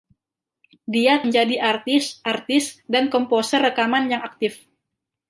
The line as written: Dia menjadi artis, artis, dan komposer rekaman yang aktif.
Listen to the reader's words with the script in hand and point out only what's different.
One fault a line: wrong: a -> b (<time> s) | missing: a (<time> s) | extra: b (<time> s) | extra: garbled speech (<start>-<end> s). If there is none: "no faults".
no faults